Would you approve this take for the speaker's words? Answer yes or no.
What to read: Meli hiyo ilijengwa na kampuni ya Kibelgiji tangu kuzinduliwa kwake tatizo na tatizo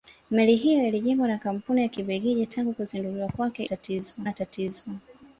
yes